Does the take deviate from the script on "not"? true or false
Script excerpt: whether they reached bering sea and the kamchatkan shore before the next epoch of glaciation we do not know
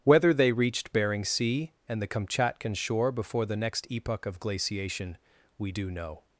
true